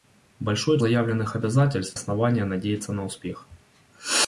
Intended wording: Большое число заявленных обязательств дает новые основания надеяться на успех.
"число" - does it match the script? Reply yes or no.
no